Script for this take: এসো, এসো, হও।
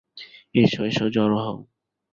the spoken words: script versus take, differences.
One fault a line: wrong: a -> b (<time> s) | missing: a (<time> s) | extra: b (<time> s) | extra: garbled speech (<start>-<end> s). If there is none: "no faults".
extra: জড়ো (1.1 s)